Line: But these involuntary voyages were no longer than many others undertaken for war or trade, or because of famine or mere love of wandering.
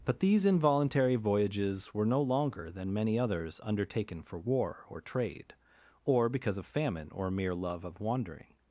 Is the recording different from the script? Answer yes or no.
no